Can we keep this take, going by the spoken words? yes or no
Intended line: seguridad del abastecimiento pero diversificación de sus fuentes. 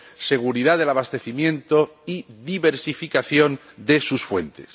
no